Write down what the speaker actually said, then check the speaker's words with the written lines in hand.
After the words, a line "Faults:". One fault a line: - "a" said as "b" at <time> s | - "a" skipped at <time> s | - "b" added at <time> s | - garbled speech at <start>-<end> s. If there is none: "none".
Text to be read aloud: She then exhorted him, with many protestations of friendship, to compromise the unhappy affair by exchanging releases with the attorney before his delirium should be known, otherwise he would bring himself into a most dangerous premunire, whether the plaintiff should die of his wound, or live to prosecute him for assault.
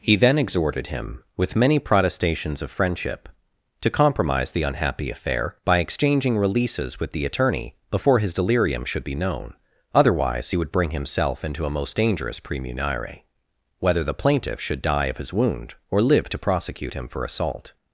He then exhorted him, with many protestations of friendship, to compromise the unhappy affair by exchanging releases with the attorney before his delirium should be known, otherwise he would bring himself into a most dangerous premunire, whether the plaintiff should die of his wound, or live to prosecute him for assault.
Faults:
- "She" said as "He" at 0.0 s